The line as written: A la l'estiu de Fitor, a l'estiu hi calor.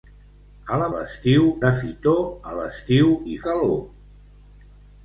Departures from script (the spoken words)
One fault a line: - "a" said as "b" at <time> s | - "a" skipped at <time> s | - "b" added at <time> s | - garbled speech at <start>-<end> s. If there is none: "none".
none